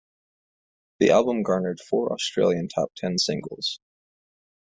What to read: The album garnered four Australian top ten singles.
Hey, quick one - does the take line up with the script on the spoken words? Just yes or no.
yes